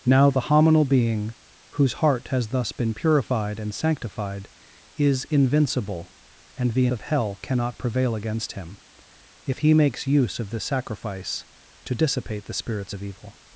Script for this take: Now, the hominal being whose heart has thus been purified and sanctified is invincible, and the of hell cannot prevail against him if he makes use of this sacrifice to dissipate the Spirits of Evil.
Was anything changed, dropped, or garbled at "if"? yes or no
no